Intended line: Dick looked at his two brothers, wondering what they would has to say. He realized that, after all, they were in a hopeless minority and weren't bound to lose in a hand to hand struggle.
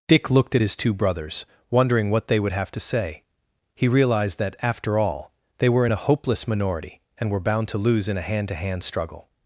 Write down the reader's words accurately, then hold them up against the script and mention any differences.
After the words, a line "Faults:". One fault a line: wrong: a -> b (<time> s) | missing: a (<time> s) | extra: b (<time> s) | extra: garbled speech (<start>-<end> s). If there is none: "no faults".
Dick looked at his two brothers, wondering what they would have to say. He realized that, after all, they were in a hopeless minority and were bound to lose in a hand to hand struggle.
Faults:
wrong: has -> have (2.5 s)
wrong: weren't -> were (7.3 s)